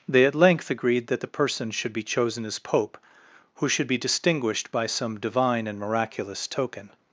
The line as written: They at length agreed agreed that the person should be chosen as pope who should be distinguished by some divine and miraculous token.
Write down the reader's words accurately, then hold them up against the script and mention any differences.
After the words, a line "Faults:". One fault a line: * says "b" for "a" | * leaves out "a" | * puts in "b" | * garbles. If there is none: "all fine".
They at length agreed that the person should be chosen as pope who should be distinguished by some divine and miraculous token.
Faults:
* leaves out "agreed"